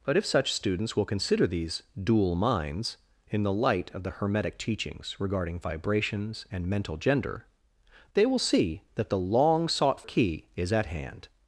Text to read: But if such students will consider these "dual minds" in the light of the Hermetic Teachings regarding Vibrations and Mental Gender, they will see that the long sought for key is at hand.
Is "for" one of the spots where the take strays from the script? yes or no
yes